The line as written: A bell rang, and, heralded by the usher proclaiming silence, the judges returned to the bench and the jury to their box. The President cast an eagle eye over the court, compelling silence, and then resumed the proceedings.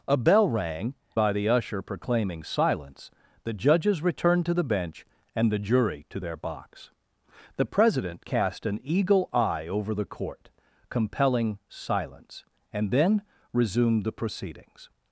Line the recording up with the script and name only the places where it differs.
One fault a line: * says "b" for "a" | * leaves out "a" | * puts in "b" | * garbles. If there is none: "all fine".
* leaves out "and heralded"